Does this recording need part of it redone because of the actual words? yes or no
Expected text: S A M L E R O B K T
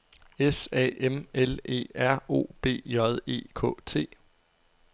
yes